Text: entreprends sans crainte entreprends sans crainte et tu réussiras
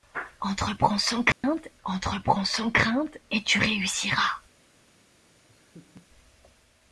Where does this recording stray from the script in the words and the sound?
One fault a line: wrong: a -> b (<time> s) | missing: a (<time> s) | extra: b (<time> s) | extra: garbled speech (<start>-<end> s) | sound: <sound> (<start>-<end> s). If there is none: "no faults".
sound: dropout (1.3-1.4 s)
sound: laugh (5.5-6.1 s)